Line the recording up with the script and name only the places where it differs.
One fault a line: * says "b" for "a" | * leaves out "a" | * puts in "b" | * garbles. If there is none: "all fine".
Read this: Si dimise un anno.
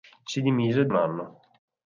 all fine